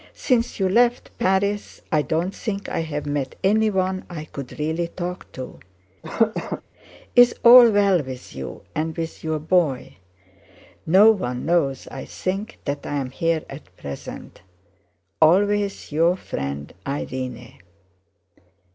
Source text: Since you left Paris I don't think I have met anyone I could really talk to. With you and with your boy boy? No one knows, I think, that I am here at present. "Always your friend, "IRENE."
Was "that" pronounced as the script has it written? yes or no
yes